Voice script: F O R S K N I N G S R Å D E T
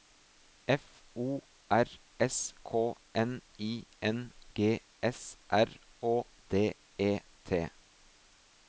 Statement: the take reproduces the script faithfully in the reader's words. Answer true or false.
true